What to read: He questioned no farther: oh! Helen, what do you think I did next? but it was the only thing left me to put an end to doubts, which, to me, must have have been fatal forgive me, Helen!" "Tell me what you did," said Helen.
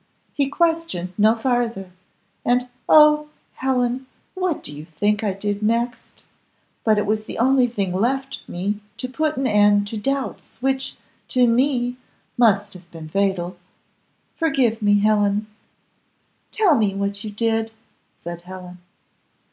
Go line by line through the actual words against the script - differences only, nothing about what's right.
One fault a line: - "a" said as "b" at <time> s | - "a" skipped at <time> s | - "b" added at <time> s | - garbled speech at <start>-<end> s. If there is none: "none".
- "and" added at 2.4 s
- "have" skipped at 12.9 s